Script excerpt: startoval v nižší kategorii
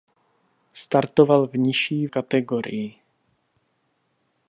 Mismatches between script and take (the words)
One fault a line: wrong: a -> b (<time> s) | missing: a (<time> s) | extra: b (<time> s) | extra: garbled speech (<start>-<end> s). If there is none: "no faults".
no faults